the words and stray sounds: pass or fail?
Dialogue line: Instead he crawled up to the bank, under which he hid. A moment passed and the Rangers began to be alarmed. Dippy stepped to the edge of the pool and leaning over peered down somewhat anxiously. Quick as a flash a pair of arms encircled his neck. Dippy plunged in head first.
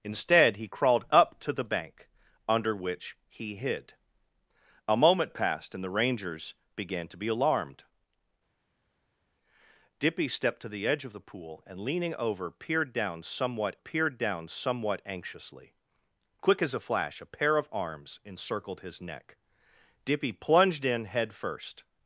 fail